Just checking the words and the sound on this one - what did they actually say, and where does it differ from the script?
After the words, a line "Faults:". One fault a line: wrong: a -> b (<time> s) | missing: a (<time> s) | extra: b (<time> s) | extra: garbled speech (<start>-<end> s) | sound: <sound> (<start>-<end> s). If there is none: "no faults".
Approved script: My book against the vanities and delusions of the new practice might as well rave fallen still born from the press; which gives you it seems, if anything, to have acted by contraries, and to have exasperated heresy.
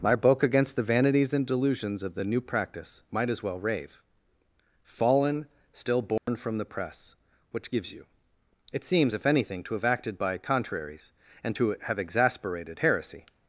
My book against the vanities and delusions of the new practice might as well rave fallen still born from the press; which gives you it seems, if anything, to have acted by contraries, and to have exasperated heresy.
Faults:
sound: dropout (6.2-6.3 s)